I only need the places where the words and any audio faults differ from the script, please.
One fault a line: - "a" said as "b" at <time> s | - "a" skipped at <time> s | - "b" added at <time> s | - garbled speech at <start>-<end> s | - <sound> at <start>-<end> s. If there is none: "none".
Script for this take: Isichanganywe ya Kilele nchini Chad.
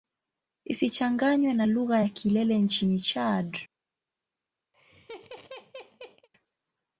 - "na lugha" added at 1.5 s
- laugh at 4.7-6.3 s